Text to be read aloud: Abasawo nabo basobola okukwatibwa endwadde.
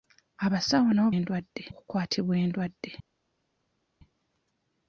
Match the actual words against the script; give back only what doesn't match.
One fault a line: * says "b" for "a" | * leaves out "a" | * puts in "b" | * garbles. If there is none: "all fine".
* says "endwadde" for "basobola"